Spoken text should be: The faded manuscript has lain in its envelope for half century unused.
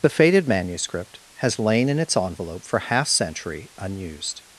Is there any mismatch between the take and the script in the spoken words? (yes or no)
no